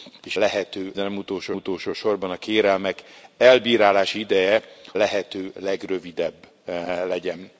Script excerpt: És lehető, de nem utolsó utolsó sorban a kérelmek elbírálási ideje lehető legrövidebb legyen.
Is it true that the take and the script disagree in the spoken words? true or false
false